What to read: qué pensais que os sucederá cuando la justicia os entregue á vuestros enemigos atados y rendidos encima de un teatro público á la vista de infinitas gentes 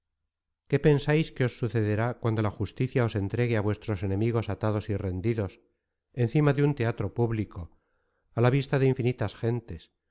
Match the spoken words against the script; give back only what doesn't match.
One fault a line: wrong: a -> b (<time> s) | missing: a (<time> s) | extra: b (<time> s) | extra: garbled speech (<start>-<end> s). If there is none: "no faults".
no faults